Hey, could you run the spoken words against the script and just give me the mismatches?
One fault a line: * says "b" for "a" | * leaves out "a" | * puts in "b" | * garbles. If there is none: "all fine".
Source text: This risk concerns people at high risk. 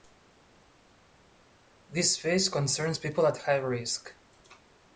* says "phase" for "risk"